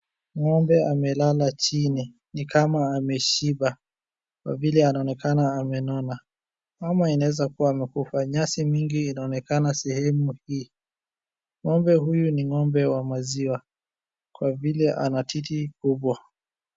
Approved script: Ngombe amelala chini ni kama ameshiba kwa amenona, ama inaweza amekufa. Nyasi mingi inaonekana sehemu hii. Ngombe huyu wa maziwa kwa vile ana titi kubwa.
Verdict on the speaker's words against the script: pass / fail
fail